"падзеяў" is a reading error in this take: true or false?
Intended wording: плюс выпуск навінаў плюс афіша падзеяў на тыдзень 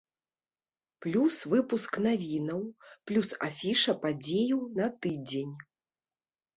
false